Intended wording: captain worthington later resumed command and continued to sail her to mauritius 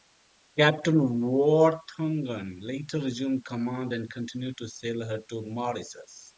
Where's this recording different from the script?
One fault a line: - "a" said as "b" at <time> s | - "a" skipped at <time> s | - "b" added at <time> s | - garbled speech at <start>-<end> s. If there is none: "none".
none